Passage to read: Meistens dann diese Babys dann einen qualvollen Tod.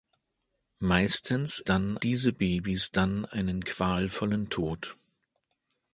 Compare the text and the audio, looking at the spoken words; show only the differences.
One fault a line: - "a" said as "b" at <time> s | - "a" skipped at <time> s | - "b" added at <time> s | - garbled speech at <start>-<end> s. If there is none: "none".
none